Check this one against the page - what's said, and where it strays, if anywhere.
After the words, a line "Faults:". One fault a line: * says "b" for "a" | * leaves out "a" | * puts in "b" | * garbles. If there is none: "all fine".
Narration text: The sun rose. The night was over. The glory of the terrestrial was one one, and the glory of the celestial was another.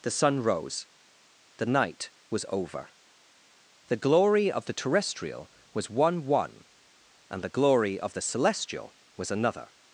The sun rose. The night was over. The glory of the terrestrial was one one, and the glory of the celestial was another.
Faults:
all fine